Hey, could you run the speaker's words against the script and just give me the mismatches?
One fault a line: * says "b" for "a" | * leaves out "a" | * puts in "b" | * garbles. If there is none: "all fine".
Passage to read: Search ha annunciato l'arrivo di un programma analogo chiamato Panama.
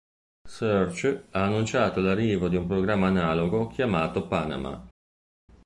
all fine